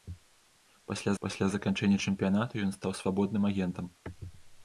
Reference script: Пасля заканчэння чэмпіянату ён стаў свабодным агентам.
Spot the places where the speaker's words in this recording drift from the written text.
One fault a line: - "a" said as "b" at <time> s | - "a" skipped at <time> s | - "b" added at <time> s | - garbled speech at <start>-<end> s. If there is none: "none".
- "пасля" added at 1.2 s